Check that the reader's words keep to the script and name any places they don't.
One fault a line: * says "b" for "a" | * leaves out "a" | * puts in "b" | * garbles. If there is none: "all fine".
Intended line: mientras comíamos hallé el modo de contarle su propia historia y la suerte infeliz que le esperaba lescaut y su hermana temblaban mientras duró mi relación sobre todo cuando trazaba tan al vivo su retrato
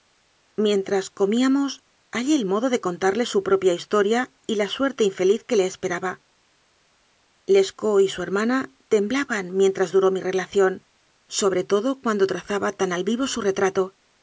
all fine